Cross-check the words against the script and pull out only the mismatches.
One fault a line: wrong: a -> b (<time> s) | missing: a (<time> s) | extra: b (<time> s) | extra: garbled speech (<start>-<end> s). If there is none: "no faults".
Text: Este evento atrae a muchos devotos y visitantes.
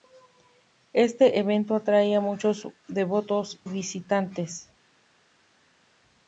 missing: y (3.6 s)